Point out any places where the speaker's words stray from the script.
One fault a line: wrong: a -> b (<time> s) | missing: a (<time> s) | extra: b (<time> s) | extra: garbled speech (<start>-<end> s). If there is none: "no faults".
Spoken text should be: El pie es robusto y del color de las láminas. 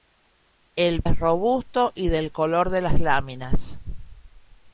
missing: pie (1.0 s)